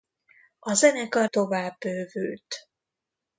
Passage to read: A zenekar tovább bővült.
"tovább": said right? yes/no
yes